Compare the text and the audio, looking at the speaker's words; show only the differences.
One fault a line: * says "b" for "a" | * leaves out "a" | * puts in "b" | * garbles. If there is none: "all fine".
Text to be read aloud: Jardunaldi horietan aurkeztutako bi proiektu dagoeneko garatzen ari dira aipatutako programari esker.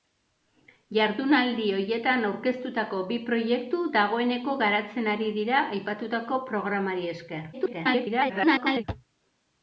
* garbles